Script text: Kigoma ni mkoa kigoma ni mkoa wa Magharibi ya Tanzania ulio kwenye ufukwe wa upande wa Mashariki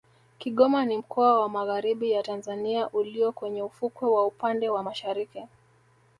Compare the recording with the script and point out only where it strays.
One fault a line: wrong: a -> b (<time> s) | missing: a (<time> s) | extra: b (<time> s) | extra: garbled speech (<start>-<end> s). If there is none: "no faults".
missing: kigoma ni mkoa (1.4 s)